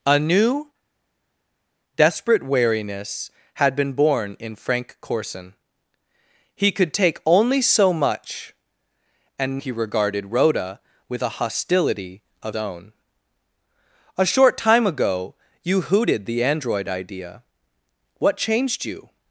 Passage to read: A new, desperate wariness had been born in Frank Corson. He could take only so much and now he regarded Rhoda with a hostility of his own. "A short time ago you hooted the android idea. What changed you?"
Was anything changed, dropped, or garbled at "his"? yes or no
yes